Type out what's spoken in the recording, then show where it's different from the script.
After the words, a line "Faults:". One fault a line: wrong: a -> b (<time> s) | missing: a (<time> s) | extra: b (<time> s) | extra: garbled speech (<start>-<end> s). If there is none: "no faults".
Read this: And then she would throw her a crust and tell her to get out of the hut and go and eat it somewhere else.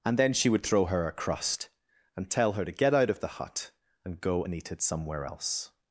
And then she would throw her a crust and tell her to get out of the hut and go and eat it somewhere else.
Faults:
no faults